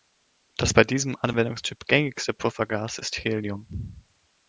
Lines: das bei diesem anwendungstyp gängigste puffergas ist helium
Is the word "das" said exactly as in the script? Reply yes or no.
yes